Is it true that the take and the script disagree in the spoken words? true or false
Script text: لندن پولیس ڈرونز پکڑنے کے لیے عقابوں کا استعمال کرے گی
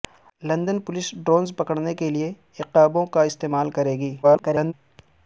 true